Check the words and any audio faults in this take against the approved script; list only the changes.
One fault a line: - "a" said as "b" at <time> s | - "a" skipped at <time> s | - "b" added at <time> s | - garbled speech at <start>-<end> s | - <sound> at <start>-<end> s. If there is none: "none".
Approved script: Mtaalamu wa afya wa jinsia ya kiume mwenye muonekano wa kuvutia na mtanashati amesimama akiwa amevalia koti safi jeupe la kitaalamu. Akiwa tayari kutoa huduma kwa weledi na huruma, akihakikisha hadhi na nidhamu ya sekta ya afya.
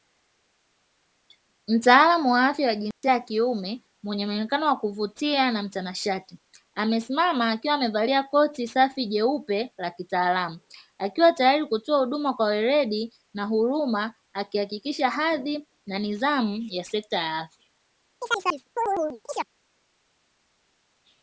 - dropout at 2.9-3.0 s
- chirp at 18.2-19.5 s